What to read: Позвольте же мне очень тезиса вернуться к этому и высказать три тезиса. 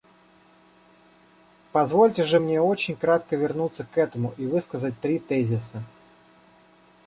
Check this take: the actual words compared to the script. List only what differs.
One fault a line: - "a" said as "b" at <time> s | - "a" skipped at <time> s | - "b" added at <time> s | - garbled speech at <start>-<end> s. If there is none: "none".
- "тезиса" said as "кратко" at 3.0 s